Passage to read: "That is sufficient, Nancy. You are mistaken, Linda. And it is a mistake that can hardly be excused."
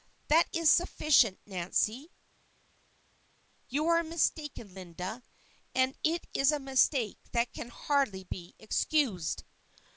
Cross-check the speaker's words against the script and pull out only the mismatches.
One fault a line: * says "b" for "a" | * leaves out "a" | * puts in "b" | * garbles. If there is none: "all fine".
all fine